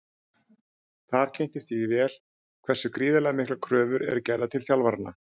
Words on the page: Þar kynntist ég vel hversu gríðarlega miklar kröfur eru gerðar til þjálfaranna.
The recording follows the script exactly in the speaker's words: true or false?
true